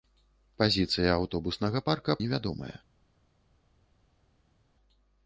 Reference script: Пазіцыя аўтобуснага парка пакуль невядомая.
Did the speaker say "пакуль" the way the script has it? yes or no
no